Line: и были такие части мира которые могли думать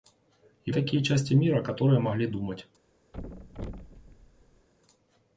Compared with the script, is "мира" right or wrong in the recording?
right